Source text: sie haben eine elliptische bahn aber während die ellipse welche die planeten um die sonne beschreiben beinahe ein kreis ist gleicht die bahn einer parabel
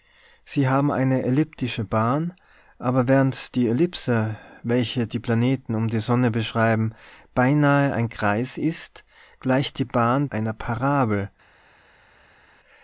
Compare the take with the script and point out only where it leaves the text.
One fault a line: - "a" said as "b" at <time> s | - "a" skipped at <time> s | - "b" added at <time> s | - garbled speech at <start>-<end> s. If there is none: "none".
none